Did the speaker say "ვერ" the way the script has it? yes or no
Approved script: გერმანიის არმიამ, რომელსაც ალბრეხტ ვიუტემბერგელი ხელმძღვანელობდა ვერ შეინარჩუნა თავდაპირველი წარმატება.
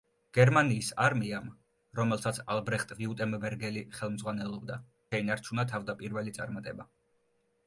no